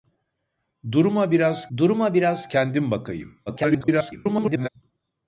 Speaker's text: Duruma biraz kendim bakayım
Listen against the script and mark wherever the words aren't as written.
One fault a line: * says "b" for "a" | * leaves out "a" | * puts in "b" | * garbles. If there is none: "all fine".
* puts in "duruma biraz"
* garbles